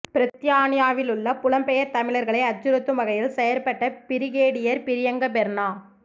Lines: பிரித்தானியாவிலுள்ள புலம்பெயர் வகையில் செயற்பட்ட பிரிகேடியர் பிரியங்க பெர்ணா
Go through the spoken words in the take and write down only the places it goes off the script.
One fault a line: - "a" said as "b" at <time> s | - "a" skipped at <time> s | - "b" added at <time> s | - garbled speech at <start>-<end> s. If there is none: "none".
- "தமிழர்களை அச்சுறுத்தும்" added at 1.9 s